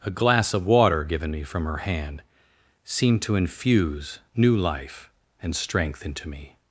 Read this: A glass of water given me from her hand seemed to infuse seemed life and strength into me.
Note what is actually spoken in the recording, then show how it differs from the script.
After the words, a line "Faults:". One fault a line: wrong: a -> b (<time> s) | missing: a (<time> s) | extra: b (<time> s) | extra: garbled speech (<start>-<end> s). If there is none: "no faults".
A glass of water given me from her hand seemed to infuse new life and strength into me.
Faults:
wrong: seemed -> new (4.3 s)